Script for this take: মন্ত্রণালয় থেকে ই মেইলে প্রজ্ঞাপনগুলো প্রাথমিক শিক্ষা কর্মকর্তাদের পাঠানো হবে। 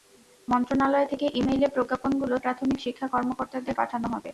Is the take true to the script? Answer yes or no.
yes